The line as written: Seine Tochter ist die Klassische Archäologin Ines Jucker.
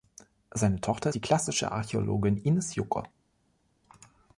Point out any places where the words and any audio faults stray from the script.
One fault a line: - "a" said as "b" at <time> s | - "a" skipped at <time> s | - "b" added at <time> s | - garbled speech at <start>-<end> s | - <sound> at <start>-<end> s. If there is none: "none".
- "ist" skipped at 1.1 s